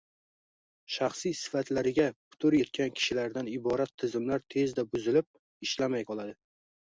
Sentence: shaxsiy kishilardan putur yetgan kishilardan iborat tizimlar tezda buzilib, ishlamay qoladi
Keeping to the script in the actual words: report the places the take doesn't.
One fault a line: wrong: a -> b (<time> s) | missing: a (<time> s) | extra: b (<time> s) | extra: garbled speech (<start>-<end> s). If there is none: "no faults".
wrong: kishilardan -> sifatlariga (1.4 s)